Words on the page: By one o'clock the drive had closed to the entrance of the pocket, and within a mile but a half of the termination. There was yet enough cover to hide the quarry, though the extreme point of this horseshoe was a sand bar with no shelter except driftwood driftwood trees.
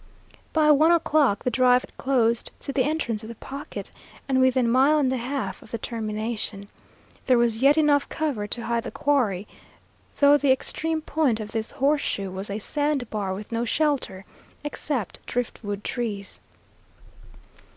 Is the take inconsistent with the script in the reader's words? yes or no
yes